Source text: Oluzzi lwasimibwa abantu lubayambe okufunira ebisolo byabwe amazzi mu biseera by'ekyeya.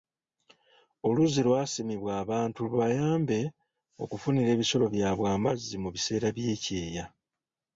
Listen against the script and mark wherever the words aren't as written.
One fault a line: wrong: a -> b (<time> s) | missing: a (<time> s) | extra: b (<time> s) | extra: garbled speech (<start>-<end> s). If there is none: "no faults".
no faults